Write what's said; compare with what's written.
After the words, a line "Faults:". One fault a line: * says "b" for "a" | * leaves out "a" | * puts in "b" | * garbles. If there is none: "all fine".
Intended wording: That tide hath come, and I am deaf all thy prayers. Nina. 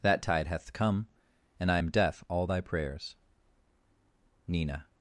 That tide hath come, and I am deaf all thy prayers. Nina.
Faults:
all fine